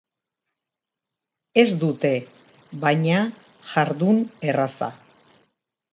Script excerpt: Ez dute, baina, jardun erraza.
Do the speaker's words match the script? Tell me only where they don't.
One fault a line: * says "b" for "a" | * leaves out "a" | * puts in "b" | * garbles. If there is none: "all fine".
all fine